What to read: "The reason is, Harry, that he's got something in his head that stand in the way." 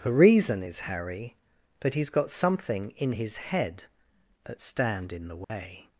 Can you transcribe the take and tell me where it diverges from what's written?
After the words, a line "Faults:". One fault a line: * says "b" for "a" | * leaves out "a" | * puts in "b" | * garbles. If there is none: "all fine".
"The reason is, Harry, that he's got something in his head that stand in the way."
Faults:
all fine